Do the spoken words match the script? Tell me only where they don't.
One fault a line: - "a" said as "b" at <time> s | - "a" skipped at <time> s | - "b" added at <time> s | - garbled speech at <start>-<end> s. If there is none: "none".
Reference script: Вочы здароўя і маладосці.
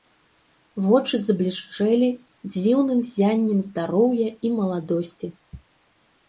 - "заблішчэлі дзіўным ззяннем" added at 1.3 s